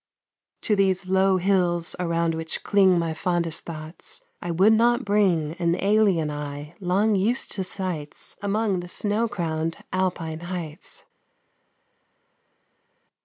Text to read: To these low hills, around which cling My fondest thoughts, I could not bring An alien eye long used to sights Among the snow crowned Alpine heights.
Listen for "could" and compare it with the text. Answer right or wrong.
wrong